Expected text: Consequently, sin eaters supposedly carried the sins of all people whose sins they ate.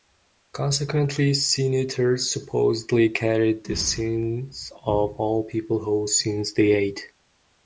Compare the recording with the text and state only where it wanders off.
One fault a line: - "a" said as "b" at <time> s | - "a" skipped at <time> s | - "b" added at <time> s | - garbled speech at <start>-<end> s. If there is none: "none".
none